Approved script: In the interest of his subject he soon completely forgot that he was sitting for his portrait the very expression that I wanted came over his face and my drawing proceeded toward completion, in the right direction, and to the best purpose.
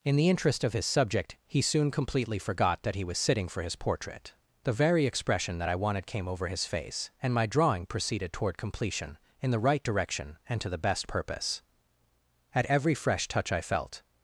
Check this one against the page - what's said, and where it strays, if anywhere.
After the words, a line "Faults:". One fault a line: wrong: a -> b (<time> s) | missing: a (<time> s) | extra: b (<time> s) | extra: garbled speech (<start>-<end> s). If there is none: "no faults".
In the interest of his subject he soon completely forgot that he was sitting for his portrait the very expression that I wanted came over his face and my drawing proceeded toward completion, in the right direction, and to the best purpose. At every fresh touch I felt
Faults:
extra: At every fresh touch I felt (12.5 s)